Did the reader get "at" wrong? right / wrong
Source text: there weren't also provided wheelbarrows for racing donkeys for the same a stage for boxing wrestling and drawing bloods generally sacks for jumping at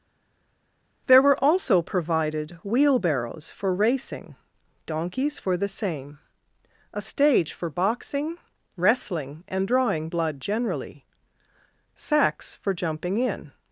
wrong